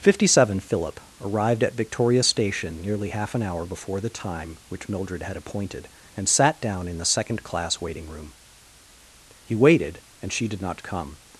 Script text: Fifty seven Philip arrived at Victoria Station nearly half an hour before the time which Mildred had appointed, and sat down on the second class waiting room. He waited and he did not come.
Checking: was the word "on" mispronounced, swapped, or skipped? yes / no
yes